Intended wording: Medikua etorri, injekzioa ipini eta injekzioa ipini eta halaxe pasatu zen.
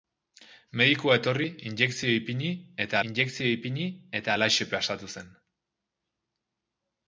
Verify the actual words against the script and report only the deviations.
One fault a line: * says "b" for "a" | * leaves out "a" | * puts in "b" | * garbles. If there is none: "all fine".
all fine